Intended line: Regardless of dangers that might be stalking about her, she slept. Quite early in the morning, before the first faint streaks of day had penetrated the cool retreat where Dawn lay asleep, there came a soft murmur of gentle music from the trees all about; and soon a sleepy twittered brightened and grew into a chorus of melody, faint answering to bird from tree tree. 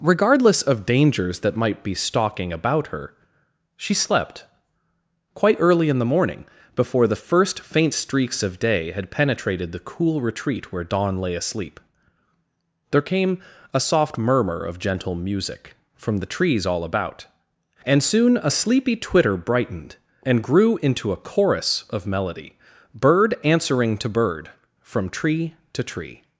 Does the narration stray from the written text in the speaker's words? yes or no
yes